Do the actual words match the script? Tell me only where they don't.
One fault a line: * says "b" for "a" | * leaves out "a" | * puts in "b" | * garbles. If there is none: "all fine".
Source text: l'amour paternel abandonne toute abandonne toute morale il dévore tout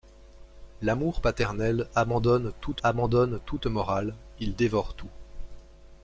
all fine